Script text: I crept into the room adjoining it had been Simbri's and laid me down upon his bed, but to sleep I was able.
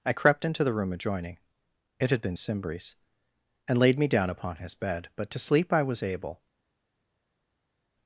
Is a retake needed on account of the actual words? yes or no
no